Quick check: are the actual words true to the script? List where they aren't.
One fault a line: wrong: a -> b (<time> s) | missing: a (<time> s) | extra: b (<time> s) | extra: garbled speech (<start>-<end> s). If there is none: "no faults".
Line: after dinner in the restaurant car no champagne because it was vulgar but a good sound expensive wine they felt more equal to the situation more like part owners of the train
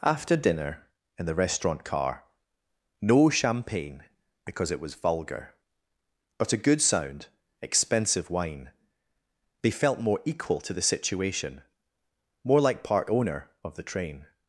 wrong: owners -> owner (13.1 s)